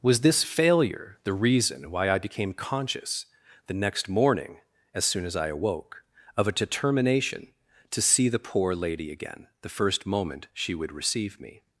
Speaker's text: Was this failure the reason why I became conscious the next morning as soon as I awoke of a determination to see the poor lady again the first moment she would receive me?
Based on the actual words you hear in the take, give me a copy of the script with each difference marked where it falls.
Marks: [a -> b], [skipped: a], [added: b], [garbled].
Was this failure the reason why I became conscious the next morning as soon as I awoke of a determination to see the poor lady again the first moment she would receive me?